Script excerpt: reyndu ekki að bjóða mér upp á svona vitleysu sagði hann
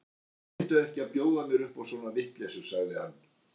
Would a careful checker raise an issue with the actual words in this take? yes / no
no